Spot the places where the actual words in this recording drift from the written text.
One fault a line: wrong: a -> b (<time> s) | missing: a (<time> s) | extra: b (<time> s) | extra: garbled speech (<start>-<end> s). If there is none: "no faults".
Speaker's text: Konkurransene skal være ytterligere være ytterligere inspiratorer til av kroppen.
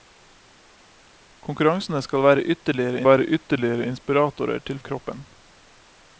no faults